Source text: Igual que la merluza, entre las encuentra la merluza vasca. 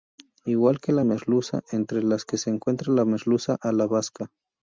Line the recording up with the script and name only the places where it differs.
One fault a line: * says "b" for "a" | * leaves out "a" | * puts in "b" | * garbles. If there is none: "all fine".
* puts in "que se"
* puts in "a la"